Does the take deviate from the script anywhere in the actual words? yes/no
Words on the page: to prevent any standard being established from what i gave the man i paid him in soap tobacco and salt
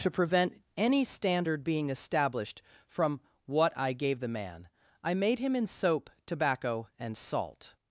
yes